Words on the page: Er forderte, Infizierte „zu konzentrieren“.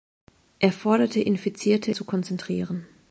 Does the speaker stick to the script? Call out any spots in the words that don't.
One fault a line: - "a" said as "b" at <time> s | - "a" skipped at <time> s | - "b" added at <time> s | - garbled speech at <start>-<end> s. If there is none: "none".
none